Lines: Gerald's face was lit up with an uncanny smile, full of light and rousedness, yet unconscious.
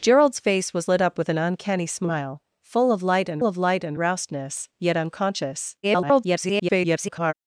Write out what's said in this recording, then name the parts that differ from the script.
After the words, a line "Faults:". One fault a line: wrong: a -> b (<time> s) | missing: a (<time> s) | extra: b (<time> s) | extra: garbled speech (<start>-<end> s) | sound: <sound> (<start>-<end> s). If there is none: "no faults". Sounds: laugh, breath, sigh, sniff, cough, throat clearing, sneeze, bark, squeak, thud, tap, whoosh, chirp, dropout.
Gerald's face was lit up with an uncanny smile, full of light and of light and rousedness, yet unconscious. [garbled]
Faults:
extra: of light and (3.4 s)
extra: garbled speech (5.8-7.3 s)